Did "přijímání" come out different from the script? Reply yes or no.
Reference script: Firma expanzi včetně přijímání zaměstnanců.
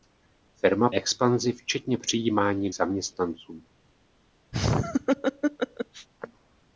no